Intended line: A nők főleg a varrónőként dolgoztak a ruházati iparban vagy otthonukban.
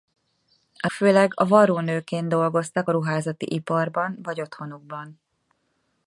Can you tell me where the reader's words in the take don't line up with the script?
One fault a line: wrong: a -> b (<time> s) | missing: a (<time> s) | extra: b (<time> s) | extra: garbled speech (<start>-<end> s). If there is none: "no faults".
missing: nők (0.9 s)